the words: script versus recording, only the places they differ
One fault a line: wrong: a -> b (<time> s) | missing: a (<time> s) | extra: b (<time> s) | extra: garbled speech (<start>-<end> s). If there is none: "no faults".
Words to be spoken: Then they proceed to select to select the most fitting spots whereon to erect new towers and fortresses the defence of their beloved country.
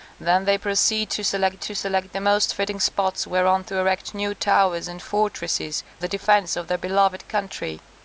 no faults